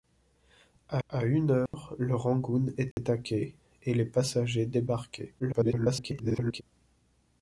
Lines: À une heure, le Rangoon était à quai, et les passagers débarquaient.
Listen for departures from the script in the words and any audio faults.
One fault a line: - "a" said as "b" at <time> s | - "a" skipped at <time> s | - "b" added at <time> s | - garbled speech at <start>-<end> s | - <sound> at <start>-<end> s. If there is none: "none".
- "à" added at 1.1 s
- dropout at 1.7-1.7 s
- dropout at 2.9-3.0 s
- garbled speech at 5.4-6.6 s